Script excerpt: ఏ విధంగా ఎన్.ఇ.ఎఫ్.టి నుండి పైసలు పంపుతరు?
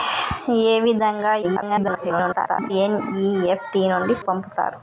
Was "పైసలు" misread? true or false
true